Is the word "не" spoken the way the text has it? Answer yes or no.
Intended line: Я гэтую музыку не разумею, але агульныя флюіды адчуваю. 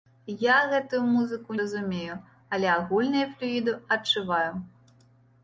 no